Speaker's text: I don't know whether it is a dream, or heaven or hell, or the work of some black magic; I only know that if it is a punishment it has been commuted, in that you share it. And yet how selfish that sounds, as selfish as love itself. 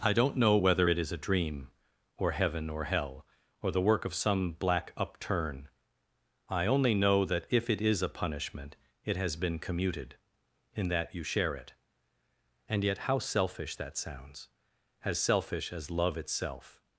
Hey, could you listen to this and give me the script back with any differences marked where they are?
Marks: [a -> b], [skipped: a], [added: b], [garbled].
I don't know whether it is a dream, or heaven or hell, or the work of some black [magic; -> upturn] I only know that if it is a punishment it has been commuted, in that you share it. And yet how selfish that sounds, as selfish as love itself.